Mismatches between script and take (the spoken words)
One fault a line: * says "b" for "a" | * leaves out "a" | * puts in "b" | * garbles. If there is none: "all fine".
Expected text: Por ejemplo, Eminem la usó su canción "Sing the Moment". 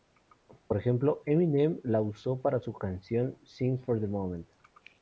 * puts in "para"
* puts in "for"